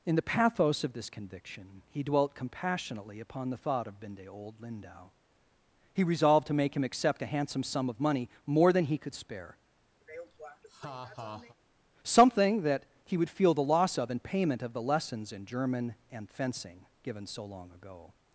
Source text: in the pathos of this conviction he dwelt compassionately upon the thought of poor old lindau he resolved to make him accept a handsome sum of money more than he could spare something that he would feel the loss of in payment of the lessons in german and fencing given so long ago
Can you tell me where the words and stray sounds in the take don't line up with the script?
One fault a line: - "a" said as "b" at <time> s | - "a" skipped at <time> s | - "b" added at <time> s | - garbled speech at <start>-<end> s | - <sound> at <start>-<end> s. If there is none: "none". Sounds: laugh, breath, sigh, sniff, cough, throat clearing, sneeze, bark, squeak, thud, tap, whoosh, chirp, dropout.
- "poor" said as "binde" at 4.0 s
- laugh at 10.0-11.6 s